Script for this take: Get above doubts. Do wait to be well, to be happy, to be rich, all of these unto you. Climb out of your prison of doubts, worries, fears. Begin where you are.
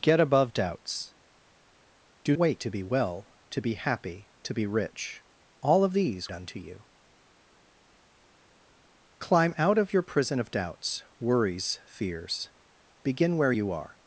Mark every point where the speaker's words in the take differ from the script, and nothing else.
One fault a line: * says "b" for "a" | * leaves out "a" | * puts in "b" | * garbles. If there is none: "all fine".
all fine